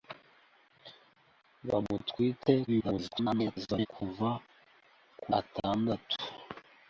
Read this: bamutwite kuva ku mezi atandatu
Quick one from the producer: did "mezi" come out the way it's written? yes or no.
no